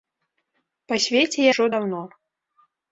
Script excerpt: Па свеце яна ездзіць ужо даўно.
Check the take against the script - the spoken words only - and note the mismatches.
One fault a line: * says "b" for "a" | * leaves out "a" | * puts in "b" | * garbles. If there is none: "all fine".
* leaves out "яна ездзіць"